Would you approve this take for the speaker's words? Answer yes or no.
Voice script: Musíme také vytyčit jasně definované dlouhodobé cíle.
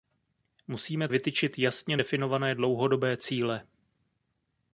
no